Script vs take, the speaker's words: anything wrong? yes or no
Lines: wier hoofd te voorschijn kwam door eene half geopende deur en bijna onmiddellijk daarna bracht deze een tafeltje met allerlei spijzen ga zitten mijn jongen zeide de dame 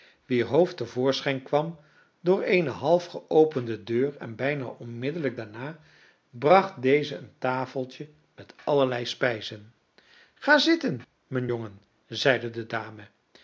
no